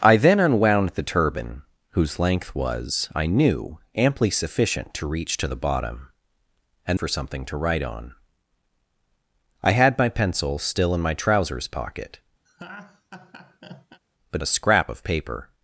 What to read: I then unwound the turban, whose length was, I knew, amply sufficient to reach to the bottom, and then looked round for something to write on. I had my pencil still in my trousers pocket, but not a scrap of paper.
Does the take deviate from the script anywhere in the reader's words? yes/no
yes